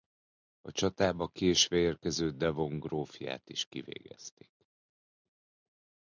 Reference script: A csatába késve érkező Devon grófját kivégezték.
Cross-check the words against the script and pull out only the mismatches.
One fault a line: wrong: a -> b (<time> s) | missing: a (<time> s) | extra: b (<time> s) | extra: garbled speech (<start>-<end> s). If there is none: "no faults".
extra: is (3.5 s)